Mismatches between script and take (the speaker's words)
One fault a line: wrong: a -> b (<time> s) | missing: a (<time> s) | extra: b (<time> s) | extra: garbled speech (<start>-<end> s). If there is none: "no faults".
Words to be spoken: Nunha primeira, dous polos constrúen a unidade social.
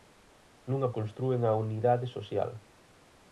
missing: primeira dous polos (0.9 s)